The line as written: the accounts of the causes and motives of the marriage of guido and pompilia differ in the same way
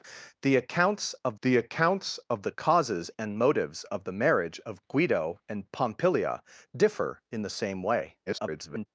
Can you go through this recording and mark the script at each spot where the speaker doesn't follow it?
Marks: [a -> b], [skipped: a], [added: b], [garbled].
the accounts of the [added: accounts of the] causes and motives of the marriage of guido and pompilia differ in the same way [garbled]